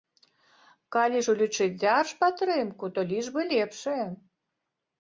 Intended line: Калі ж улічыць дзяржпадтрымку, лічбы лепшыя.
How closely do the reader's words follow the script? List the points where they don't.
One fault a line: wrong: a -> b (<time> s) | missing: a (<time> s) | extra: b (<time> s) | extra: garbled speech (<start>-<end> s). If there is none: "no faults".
extra: то (3.0 s)